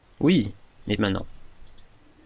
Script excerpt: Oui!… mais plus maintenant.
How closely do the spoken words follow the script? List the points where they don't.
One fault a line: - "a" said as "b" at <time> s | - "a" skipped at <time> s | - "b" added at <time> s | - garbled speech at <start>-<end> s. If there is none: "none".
- "plus" skipped at 1.0 s